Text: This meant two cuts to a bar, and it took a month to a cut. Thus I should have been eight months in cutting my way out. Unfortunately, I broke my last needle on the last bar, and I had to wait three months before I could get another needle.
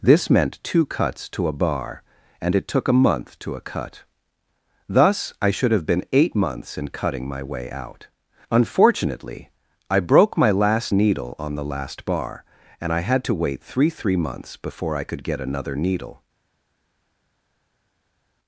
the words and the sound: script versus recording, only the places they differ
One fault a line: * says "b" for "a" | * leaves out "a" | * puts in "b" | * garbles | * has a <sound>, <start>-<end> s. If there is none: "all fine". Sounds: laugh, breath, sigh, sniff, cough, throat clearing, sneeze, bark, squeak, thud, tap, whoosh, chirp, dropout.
* puts in "three"